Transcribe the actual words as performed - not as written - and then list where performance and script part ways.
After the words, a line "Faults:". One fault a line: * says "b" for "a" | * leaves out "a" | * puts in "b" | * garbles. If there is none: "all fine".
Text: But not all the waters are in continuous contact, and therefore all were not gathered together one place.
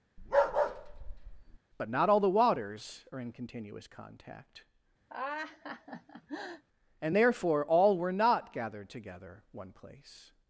But not all the waters are in continuous contact, and therefore all were not gathered together one place.
Faults:
all fine